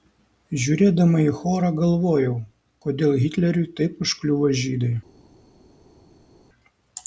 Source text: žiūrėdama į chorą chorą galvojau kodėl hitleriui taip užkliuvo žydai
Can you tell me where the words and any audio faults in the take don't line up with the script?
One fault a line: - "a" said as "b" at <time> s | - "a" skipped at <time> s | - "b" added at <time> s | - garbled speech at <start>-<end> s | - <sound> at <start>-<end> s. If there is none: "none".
- "chorą" skipped at 1.7 s